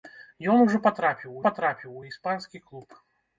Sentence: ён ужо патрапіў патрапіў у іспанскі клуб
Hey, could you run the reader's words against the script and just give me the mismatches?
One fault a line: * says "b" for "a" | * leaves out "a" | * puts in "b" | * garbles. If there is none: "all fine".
all fine